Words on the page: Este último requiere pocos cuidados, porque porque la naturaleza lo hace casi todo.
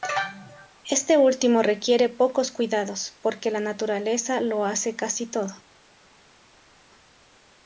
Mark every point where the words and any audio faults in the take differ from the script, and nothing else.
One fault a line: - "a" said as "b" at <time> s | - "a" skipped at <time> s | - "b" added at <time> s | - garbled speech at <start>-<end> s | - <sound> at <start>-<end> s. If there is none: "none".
- "porque" skipped at 3.5 s